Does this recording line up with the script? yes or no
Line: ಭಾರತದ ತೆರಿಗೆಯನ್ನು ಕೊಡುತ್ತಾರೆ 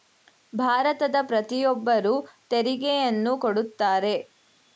no